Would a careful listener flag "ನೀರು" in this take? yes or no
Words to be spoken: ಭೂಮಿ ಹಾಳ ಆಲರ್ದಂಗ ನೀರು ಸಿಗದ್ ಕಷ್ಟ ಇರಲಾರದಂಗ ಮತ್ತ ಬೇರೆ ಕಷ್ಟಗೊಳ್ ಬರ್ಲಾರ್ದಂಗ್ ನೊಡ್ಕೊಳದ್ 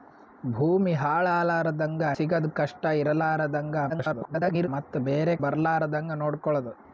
yes